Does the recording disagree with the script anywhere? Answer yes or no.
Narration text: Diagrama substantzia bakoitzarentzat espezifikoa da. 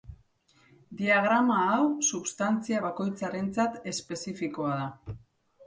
yes